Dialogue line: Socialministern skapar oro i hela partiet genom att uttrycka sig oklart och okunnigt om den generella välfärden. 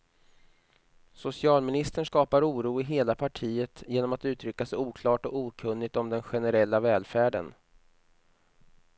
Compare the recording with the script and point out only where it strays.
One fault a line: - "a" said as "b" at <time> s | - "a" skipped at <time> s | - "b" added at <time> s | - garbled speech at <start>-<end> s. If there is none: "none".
none